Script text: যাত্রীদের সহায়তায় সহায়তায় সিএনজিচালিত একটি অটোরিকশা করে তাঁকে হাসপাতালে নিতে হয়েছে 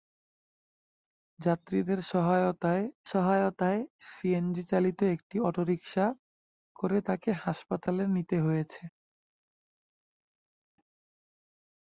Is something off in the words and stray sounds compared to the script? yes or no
no